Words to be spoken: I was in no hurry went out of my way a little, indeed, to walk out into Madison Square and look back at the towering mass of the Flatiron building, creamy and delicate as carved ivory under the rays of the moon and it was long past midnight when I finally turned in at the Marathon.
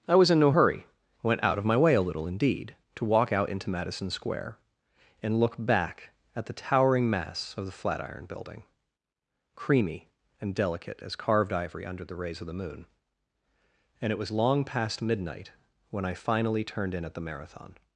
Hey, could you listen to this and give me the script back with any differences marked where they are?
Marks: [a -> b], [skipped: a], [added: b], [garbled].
I was in no hurry went out of my way a little, indeed, to walk out into Madison Square and look back at the towering mass of the Flatiron building, creamy and delicate as carved ivory under the rays of the moon and it was long past midnight when I finally turned in at the Marathon.